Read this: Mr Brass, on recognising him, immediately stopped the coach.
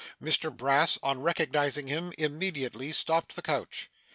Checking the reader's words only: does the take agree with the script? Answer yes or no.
yes